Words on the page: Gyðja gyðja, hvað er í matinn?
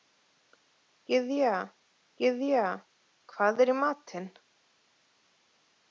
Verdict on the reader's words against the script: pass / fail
pass